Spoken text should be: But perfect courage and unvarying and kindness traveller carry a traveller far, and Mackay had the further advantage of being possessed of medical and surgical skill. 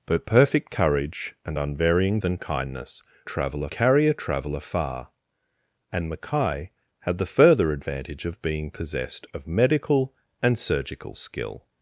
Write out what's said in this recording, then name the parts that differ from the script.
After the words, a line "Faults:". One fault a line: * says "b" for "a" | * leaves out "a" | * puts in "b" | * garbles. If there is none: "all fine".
But perfect courage and unvarying and kindness traveller carry a traveller far, and Mackay had the further advantage of being possessed of medical and surgical skill.
Faults:
all fine